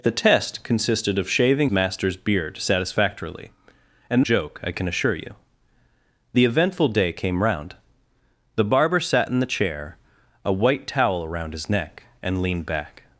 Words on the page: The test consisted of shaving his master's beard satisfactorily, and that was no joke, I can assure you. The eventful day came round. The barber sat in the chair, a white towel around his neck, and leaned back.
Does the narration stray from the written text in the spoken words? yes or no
yes